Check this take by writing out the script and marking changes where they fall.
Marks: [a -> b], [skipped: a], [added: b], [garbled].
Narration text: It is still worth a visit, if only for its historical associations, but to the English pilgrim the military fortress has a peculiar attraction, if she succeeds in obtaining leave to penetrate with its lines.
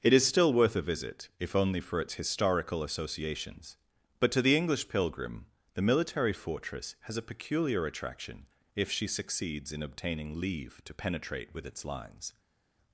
It is still worth a visit, if only for its historical associations, but to the English pilgrim the military fortress has a peculiar attraction, if she succeeds in obtaining leave to penetrate with its lines.